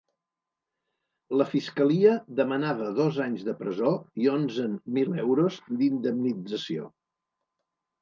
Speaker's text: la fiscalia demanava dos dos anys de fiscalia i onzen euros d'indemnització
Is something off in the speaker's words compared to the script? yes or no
yes